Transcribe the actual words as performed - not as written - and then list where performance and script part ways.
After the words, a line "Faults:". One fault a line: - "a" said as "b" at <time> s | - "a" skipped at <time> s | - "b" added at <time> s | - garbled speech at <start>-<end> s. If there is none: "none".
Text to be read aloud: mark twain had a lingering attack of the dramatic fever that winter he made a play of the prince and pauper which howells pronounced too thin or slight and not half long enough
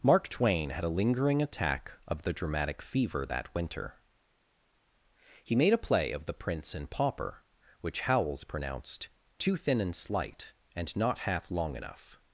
mark twain had a lingering attack of the dramatic fever that winter he made a play of the prince and pauper which howells pronounced too thin and slight and not half long enough
Faults:
- "or" said as "and" at 9.8 s